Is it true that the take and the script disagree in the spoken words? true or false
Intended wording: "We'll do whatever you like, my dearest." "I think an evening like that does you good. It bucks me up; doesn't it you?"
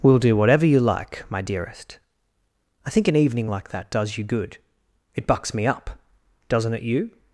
false